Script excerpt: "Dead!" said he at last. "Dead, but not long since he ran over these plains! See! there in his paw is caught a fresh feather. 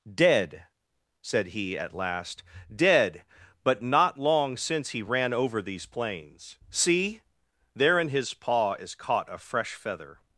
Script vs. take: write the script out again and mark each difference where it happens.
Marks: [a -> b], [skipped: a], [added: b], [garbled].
"Dead!" said he at last. "Dead, but not long since he ran over these plains! See! there in his paw is caught a fresh feather.